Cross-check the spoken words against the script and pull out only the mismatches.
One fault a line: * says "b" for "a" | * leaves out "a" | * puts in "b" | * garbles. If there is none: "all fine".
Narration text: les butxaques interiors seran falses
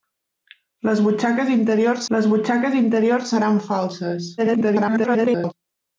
* puts in "les butxaques interiors"
* garbles